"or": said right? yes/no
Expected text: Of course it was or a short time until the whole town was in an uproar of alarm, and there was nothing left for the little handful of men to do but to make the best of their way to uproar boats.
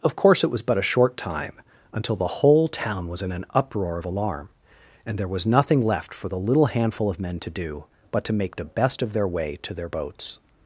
no